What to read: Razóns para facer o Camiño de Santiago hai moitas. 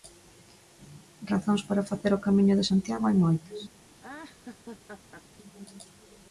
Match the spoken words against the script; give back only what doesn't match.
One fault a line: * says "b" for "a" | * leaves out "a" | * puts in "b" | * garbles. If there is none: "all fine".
all fine